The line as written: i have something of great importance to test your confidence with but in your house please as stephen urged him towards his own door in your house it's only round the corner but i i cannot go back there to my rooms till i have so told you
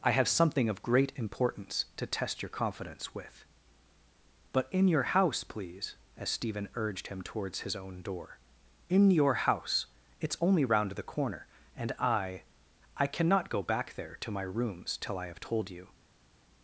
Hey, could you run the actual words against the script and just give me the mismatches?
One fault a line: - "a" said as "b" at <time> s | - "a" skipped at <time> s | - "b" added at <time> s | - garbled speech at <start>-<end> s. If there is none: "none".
- "but" said as "and" at 11.8 s
- "so" skipped at 15.4 s